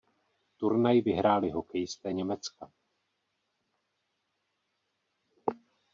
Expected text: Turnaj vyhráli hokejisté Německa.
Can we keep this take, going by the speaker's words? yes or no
yes